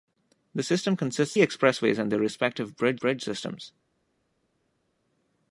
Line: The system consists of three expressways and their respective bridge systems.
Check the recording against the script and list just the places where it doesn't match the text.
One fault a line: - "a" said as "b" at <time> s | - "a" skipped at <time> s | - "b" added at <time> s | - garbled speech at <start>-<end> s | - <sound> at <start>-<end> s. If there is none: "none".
- "of three" skipped at 1.4 s
- "bridge" added at 3.0 s